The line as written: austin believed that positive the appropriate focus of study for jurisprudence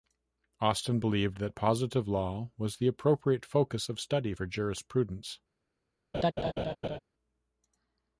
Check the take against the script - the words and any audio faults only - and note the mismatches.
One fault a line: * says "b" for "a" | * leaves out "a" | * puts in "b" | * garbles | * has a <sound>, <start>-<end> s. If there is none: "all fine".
* puts in "law was"
* has a laugh, 6.1-7.0 s